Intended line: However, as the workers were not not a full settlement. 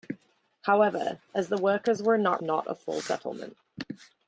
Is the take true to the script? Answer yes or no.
yes